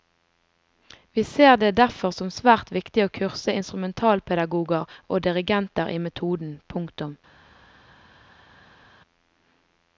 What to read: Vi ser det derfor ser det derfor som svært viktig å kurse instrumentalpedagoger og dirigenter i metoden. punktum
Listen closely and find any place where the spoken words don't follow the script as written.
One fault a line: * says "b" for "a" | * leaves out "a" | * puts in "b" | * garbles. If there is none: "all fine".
* leaves out "ser det derfor"